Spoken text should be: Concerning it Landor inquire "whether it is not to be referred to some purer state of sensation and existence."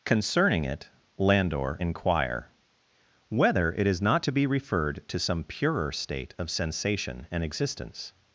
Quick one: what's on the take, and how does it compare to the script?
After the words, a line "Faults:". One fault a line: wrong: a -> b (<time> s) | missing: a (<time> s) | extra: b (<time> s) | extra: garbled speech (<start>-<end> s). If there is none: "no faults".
Concerning it Landor inquire "whether it is not to be referred to some purer state of sensation and existence."
Faults:
no faults